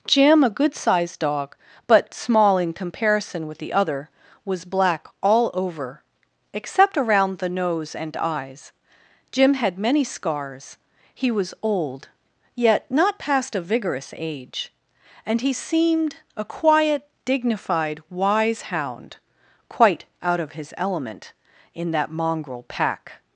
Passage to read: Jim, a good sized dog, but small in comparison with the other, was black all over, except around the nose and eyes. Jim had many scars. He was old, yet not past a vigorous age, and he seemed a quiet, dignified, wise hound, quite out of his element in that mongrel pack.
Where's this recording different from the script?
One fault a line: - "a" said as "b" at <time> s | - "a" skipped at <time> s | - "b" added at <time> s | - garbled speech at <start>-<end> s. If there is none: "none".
none